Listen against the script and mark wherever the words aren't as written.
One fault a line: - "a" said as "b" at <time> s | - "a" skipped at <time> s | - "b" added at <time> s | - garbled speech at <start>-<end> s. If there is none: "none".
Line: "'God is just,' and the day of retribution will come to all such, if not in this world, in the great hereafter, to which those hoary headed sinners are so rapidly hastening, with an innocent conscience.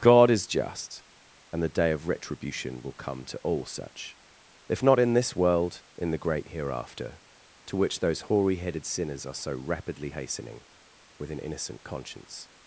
none